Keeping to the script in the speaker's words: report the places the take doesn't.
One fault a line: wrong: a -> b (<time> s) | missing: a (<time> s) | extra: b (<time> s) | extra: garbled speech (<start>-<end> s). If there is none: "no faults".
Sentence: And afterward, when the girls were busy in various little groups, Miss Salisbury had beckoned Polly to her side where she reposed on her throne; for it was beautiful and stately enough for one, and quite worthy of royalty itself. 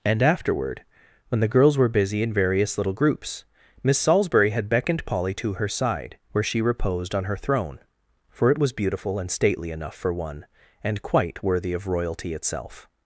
no faults